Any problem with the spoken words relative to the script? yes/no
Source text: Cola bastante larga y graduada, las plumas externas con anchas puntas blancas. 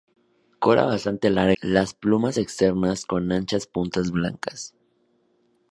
yes